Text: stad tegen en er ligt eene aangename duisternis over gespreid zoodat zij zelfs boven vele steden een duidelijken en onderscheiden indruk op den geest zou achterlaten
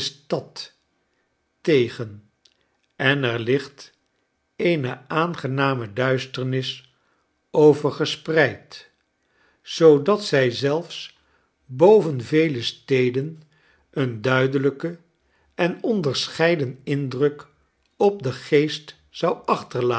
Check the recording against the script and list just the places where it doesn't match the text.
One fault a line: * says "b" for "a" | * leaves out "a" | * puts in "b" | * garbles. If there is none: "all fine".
all fine